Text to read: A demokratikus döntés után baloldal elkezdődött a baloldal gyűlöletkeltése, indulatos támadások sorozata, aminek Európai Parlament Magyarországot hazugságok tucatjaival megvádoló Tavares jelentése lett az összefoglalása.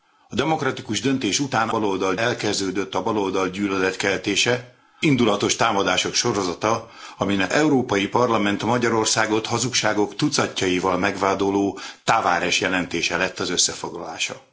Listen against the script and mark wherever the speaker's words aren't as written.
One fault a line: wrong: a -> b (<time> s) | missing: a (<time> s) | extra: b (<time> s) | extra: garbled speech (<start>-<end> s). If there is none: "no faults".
no faults